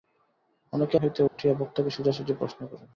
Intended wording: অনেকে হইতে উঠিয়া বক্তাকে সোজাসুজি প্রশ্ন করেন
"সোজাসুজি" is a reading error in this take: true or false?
false